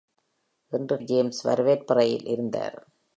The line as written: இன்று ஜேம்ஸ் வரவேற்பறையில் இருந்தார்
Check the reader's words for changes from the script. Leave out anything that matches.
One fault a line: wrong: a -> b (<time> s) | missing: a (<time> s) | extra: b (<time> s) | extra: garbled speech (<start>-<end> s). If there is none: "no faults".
no faults